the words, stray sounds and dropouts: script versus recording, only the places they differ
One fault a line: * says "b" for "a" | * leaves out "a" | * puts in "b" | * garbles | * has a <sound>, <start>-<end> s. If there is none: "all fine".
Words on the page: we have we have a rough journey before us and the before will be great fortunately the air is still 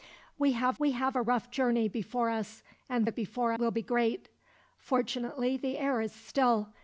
all fine